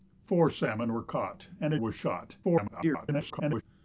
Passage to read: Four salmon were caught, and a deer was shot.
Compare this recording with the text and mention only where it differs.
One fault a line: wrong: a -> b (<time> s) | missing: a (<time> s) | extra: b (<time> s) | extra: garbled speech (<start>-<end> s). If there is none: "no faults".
missing: deer (1.8 s)
extra: garbled speech (2.4-3.6 s)